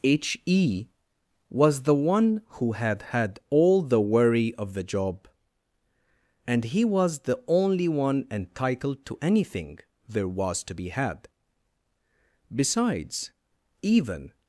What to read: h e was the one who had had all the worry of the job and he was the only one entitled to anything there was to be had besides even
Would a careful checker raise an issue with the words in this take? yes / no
no